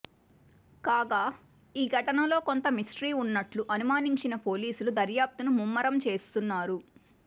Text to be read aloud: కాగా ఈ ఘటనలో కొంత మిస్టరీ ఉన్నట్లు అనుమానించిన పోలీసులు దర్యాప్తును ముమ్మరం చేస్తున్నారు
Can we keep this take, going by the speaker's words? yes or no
yes